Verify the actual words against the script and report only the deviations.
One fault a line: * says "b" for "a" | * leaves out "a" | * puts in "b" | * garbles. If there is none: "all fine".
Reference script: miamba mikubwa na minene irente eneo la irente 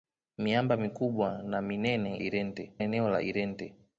all fine